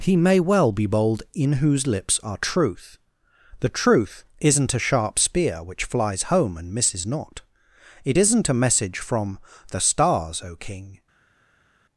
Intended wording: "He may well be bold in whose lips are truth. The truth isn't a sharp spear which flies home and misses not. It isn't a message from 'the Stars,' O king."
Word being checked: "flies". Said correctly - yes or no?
yes